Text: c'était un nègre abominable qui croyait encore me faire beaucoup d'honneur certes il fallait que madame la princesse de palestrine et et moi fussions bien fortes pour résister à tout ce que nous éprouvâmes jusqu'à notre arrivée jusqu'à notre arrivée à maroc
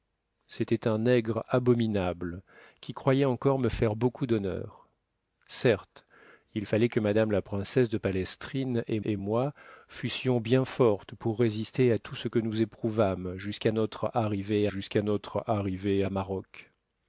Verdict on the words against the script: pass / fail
pass